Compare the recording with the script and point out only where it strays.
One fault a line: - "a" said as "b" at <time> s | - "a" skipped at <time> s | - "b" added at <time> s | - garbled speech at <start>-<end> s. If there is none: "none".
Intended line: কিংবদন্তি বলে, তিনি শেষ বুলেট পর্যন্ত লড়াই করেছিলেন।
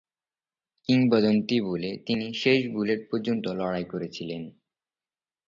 none